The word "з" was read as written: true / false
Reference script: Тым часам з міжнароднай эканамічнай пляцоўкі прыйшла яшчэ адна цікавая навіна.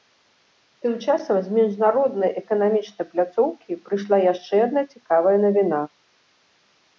true